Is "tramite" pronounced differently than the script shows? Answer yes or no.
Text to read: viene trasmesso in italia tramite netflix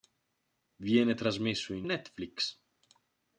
yes